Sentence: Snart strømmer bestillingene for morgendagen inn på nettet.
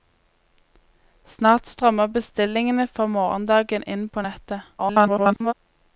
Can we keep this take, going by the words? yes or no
no